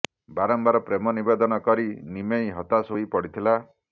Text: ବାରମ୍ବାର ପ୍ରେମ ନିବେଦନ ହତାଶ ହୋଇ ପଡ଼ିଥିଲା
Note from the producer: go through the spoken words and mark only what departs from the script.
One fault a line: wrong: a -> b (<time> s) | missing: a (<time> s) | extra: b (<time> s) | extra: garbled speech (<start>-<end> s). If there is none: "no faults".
extra: କରି ନିମେଇ (1.7 s)